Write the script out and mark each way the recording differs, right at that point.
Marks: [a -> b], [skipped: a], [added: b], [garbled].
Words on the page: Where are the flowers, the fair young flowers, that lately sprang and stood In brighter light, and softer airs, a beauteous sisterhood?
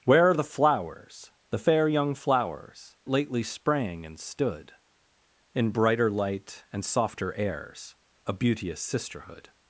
Where are the flowers, the fair young flowers, [skipped: that] lately sprang and stood In brighter light, and softer airs, a beauteous sisterhood?